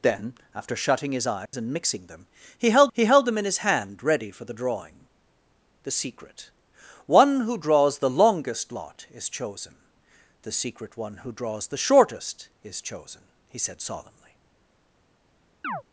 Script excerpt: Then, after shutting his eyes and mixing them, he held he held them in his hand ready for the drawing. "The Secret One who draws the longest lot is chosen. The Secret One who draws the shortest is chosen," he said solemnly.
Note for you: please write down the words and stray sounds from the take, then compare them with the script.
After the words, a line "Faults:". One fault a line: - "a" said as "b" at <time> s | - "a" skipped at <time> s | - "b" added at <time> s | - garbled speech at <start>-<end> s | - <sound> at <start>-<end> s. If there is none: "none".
Then, after shutting his eyes and mixing them, he held he held them in his hand ready for the drawing. "The Secret One who draws the longest lot is chosen. The Secret One who draws the shortest is chosen," he said solemnly.
Faults:
- dropout at 1.5-1.5 s
- chirp at 15.6-15.8 s